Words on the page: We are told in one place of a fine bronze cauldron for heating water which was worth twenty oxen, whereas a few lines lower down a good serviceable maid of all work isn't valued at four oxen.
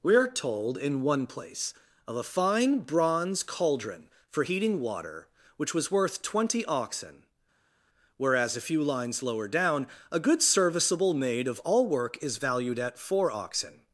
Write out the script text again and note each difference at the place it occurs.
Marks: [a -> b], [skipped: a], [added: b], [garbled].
We are told in one place of a fine bronze cauldron for heating water which was worth twenty oxen, whereas a few lines lower down a good serviceable maid of all work [isn't -> is] valued at four oxen.